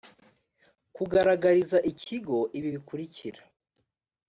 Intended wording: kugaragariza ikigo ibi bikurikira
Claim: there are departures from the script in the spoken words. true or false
false